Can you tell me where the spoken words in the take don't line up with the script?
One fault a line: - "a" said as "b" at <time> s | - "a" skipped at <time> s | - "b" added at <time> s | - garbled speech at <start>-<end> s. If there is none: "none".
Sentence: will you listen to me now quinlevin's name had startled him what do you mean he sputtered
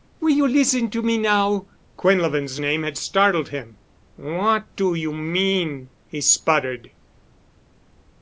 none